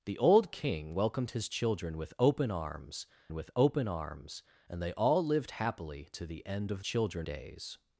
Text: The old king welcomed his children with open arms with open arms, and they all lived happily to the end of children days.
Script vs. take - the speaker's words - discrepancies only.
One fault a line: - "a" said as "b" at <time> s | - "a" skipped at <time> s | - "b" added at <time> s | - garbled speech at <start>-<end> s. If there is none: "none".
none